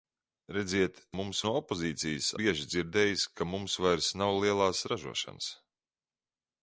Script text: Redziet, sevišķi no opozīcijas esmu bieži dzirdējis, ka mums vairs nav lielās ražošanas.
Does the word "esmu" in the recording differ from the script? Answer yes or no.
yes